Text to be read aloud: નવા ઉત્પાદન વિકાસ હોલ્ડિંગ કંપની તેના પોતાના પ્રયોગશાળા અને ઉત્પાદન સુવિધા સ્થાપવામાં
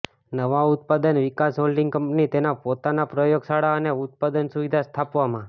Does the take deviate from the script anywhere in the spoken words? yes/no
no